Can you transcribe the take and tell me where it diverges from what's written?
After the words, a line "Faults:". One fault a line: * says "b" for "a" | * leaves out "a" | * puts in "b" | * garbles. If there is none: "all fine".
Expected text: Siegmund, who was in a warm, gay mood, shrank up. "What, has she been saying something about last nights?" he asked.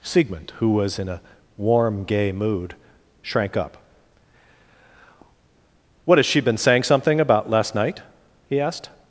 Siegmund, who was in a warm, gay mood, shrank up. "What, has she been saying something about last night?" he asked.
Faults:
* says "night" for "nights"